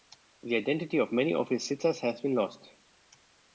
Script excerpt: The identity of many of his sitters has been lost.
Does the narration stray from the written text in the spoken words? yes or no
no